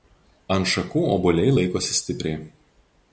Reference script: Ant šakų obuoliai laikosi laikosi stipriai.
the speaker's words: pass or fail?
fail